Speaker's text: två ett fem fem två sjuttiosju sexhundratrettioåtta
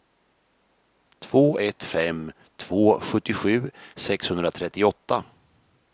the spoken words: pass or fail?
fail